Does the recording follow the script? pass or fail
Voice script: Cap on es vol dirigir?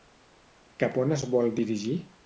pass